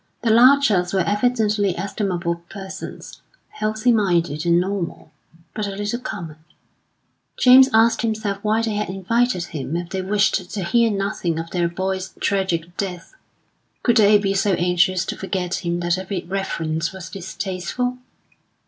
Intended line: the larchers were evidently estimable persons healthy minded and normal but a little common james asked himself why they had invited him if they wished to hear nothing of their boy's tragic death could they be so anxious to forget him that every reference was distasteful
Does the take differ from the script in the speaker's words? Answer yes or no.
no